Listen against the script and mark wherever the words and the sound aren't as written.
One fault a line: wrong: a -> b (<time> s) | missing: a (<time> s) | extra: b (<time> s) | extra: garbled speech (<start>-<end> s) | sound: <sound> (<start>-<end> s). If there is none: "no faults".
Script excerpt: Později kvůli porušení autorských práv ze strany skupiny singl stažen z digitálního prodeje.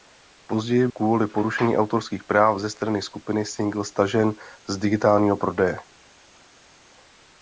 no faults